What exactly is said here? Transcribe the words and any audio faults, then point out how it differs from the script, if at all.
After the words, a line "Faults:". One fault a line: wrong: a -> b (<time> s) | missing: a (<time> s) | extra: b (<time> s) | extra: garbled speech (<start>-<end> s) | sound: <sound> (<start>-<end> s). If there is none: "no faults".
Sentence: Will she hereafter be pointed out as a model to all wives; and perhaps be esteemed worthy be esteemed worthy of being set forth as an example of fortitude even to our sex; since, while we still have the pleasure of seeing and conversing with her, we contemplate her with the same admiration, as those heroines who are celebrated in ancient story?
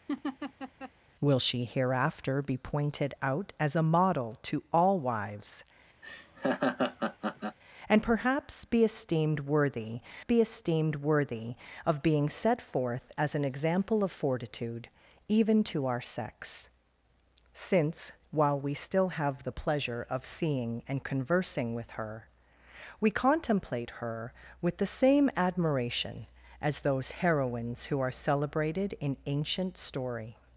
Will she hereafter be pointed out as a model to all wives; and perhaps be esteemed worthy be esteemed worthy of being set forth as an example of fortitude even to our sex; since, while we still have the pleasure of seeing and conversing with her, we contemplate her with the same admiration, as those heroines who are celebrated in ancient story?
Faults:
sound: laugh (0.1-0.9 s)
sound: laugh (6.0-7.6 s)